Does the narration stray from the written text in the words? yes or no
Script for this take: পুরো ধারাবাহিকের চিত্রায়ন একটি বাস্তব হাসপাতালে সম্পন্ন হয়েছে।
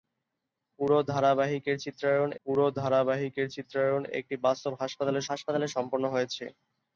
yes